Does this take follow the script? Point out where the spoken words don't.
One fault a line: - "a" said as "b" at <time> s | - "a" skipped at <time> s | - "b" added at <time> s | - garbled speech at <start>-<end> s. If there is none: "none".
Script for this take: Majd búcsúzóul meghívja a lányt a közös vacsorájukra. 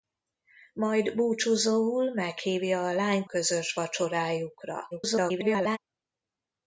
- "a" skipped at 3.3 s
- garbled speech at 4.9-5.8 s